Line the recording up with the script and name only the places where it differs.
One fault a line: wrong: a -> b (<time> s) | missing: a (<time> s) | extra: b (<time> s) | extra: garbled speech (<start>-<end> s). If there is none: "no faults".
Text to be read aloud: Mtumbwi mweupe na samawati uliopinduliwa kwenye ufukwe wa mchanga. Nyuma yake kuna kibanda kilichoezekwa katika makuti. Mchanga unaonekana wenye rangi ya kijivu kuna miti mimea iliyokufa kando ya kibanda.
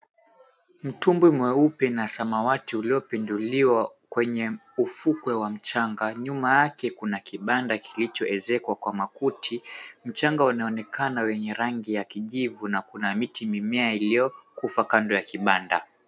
wrong: katika -> kwa (8.8 s)
extra: na (12.7 s)